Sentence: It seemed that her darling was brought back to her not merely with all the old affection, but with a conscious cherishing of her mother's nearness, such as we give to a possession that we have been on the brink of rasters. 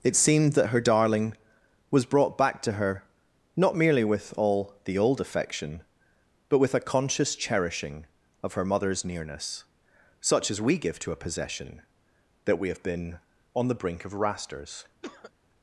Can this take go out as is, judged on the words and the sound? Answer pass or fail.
fail